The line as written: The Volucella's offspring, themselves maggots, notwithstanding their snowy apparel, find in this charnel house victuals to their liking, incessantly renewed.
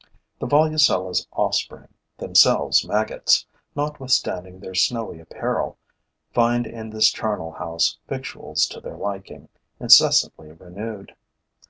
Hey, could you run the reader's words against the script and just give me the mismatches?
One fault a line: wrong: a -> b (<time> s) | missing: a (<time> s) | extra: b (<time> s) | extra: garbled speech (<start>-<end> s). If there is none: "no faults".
no faults